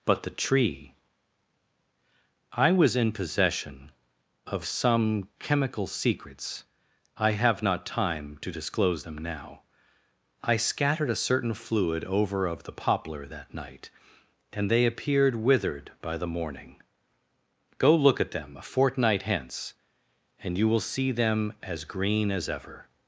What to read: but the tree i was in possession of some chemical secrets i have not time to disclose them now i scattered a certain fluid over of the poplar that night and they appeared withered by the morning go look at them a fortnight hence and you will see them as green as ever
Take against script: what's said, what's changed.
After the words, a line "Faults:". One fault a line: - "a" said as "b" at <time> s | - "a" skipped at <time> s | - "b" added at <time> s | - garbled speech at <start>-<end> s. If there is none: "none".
but the tree i was in possession of some chemical secrets i have not time to disclose them now i scattered a certain fluid over of the poplar that night and they appeared withered by the morning go look at them a fortnight hence and you will see them as green as ever
Faults:
none